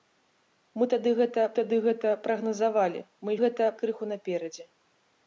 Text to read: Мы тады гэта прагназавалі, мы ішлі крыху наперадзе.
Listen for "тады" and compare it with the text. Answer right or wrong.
right